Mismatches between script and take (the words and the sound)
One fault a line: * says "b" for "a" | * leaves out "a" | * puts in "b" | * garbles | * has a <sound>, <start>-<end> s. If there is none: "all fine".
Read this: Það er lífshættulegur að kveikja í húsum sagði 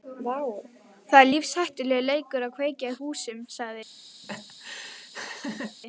* puts in "leikur"
* has a laugh, 4.2-5.8 s